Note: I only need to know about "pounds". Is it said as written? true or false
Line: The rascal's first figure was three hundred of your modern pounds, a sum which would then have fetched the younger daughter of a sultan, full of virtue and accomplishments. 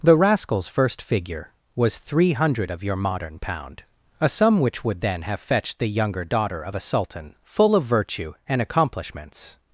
false